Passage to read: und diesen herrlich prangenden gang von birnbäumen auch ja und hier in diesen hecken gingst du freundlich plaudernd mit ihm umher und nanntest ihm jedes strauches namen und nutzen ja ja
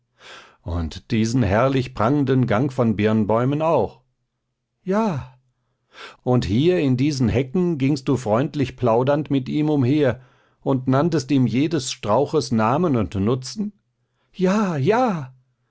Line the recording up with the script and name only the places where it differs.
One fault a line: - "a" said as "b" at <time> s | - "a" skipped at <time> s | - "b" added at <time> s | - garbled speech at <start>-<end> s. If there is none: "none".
none